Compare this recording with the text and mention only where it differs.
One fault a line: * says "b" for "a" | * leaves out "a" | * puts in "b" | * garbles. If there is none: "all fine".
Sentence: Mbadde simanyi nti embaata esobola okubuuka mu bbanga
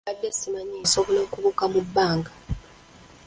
* leaves out "nti embaata"